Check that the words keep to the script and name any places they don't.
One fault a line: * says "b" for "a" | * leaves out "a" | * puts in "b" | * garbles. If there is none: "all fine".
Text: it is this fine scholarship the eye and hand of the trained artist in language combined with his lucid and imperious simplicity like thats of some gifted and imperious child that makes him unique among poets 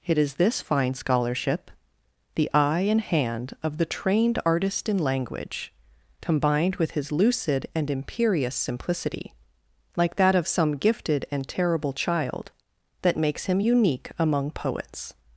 * says "that" for "thats"
* says "terrible" for "imperious"